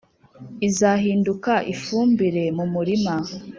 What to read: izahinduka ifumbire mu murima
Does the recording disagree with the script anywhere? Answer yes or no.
no